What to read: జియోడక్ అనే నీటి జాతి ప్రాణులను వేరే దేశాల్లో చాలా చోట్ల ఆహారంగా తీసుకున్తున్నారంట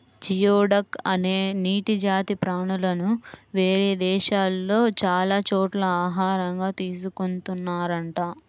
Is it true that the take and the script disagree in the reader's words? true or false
false